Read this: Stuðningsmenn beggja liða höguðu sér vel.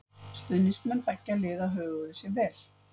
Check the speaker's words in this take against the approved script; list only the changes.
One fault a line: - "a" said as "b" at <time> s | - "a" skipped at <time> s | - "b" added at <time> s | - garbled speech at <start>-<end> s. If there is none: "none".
none